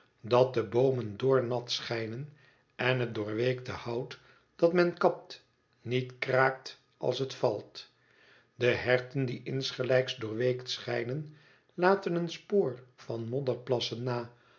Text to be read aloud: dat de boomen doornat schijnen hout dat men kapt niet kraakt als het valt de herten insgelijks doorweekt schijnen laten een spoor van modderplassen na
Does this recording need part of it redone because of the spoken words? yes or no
yes